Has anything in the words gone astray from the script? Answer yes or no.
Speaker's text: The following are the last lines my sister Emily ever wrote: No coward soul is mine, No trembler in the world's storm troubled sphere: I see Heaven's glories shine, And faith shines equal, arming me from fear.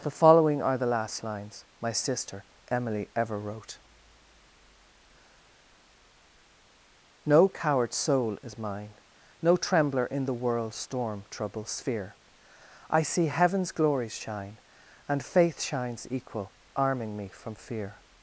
yes